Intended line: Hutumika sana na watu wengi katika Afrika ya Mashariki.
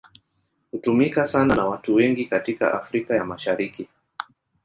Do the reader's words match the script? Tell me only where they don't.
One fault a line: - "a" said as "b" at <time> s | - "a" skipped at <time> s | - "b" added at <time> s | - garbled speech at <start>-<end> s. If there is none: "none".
none